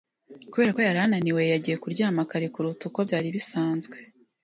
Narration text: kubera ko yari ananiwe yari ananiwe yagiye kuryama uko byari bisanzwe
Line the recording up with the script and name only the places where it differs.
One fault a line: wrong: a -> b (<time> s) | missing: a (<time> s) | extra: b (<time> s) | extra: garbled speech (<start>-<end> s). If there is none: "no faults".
wrong: yari ananiwe yagiye kuryama -> yagiye kuryama kare kuruta (1.5 s)